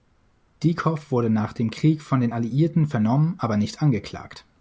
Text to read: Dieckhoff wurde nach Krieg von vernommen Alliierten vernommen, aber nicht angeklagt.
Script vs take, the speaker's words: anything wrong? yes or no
yes